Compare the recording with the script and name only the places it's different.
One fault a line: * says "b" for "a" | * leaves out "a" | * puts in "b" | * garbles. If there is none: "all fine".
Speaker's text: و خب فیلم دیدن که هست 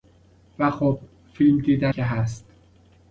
all fine